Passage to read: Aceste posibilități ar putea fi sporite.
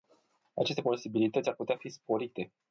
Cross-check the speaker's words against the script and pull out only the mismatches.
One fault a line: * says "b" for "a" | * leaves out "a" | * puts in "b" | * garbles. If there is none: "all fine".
all fine